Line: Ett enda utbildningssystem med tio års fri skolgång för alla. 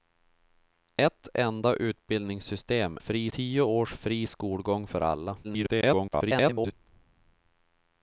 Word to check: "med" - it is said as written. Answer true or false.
false